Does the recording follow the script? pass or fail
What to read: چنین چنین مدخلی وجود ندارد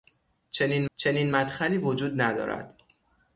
pass